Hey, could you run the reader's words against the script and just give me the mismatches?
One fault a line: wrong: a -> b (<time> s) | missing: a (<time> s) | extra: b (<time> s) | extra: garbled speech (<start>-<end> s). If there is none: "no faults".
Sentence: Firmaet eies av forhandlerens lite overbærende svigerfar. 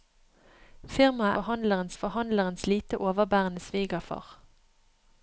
wrong: eies -> forhandlerens (1.4 s)